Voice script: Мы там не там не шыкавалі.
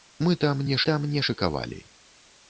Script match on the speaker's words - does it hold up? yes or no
yes